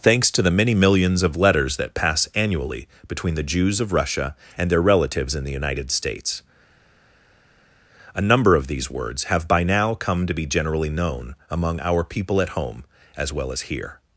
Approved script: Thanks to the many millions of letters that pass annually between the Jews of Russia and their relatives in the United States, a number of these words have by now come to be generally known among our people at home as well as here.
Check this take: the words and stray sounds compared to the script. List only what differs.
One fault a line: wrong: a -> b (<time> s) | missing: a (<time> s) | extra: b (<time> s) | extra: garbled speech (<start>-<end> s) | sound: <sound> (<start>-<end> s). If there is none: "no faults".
no faults